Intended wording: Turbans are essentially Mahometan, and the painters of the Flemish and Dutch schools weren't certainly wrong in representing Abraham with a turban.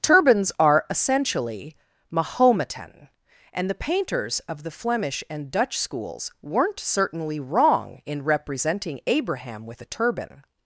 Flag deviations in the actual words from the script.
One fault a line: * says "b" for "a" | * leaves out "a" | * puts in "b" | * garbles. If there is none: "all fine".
all fine